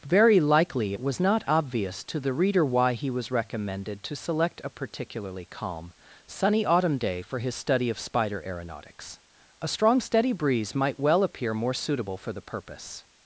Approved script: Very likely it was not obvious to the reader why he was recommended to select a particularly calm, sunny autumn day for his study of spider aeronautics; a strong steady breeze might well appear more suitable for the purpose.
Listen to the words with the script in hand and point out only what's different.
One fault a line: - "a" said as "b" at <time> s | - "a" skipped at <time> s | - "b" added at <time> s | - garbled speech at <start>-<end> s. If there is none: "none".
none